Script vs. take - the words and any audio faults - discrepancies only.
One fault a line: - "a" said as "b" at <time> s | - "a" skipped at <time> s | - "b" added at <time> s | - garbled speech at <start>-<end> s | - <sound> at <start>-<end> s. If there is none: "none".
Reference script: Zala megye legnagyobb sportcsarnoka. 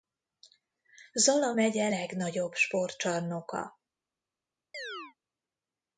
- chirp at 4.7-5.1 s